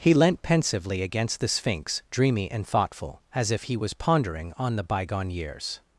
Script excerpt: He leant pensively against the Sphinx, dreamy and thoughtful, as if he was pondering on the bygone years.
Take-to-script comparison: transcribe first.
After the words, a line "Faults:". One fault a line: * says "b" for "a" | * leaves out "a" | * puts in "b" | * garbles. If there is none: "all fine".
He leant pensively against the Sphinx, dreamy and thoughtful, as if he was pondering on the bygone years.
Faults:
all fine